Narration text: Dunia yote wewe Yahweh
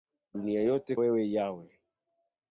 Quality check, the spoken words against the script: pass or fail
pass